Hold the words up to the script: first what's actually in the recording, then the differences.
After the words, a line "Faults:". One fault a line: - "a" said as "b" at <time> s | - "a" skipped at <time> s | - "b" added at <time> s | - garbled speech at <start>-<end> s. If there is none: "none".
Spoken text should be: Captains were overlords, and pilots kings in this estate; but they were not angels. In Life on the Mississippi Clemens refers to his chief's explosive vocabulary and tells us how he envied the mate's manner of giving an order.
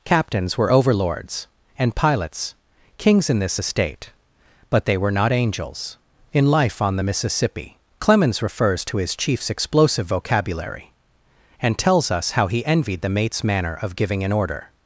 Captains were overlords, and pilots kings in this estate; but they were not angels. In Life on the Mississippi Clemens refers to his chief's explosive vocabulary and tells us how he envied the mate's manner of giving an order.
Faults:
none